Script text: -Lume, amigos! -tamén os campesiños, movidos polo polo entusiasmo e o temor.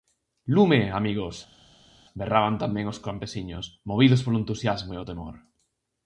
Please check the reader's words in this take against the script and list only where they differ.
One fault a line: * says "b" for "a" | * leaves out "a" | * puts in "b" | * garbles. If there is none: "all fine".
* puts in "berraban"
* leaves out "polo"